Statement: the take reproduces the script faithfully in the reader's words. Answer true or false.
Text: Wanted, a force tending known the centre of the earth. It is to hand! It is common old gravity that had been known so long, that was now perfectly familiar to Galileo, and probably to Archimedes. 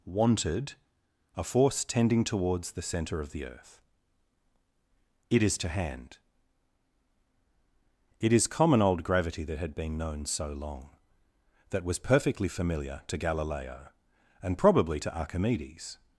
false